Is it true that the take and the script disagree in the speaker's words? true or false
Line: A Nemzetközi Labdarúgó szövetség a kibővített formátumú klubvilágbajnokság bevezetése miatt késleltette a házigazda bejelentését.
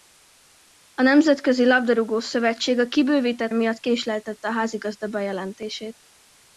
true